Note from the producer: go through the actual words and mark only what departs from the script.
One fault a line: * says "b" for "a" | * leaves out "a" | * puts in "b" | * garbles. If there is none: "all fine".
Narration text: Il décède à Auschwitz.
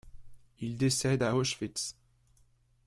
all fine